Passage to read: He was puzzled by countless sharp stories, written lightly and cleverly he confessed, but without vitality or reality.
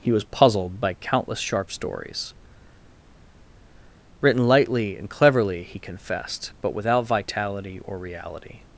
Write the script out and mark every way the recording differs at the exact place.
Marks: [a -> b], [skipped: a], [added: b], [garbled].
He was puzzled by countless sharp stories, written lightly and cleverly he confessed, but without vitality or reality.